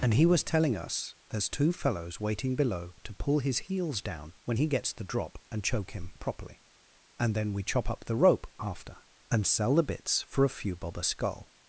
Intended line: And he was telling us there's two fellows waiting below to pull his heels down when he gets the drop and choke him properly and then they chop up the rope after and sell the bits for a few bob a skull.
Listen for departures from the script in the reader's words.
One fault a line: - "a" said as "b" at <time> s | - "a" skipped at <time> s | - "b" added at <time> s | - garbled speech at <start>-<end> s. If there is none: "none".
- "they" said as "we" at 7.5 s